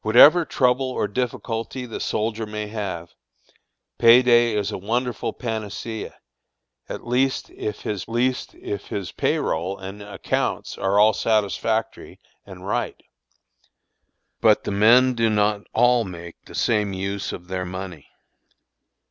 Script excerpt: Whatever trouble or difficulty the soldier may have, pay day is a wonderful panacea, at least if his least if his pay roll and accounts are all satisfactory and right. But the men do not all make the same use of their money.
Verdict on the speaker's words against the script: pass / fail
pass